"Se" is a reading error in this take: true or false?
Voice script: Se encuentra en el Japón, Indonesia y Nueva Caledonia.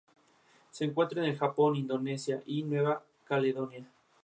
false